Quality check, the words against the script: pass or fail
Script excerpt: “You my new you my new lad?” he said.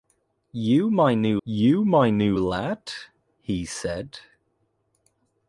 pass